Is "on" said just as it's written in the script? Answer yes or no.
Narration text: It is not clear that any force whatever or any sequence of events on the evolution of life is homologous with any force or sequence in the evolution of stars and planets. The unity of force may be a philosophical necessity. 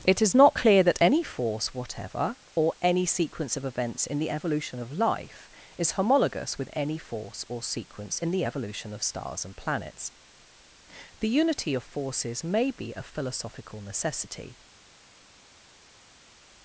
no